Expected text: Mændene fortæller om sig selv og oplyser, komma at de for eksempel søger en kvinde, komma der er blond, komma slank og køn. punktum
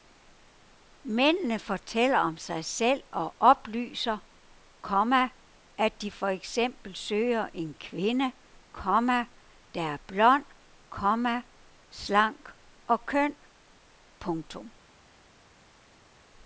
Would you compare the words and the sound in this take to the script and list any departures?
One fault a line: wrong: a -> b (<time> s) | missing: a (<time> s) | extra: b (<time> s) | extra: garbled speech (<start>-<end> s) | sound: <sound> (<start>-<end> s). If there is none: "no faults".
no faults